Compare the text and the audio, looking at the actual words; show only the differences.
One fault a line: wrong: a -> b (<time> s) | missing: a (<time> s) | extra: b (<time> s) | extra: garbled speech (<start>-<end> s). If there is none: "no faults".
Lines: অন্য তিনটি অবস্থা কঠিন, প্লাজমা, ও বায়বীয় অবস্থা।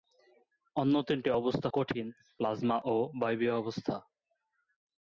no faults